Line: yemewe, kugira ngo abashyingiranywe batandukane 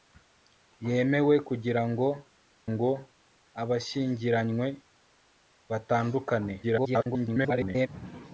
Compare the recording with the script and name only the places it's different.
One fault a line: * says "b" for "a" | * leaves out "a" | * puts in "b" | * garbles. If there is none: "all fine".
* puts in "ngo"
* garbles